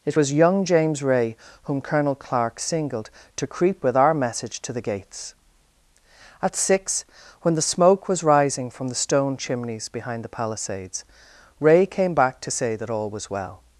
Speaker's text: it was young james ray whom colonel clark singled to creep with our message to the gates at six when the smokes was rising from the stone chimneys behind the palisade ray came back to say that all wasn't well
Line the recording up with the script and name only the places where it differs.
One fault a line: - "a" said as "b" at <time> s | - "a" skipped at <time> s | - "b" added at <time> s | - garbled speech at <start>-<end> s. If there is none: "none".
- "smokes" said as "smoke" at 7.6 s
- "palisade" said as "palisades" at 10.4 s
- "wasn't" said as "was" at 13.1 s